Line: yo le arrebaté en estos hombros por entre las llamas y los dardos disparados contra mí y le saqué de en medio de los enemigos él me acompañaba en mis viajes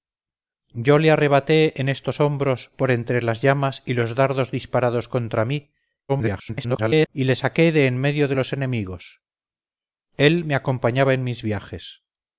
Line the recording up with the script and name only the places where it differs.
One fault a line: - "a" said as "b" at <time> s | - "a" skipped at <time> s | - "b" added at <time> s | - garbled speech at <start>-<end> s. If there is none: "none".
- garbled speech at 6.1-7.1 s